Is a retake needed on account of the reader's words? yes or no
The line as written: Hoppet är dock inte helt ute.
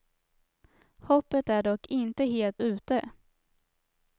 no